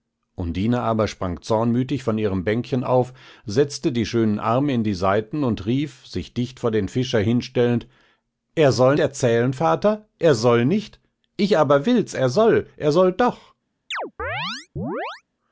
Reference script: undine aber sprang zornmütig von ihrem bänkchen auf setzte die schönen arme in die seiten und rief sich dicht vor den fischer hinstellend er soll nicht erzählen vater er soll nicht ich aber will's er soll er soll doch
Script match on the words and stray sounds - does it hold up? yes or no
no